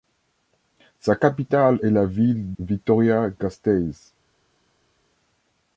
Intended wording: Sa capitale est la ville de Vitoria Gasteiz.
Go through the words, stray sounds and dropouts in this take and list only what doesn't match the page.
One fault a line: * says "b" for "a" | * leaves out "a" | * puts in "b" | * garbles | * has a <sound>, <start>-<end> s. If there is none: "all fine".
* leaves out "de"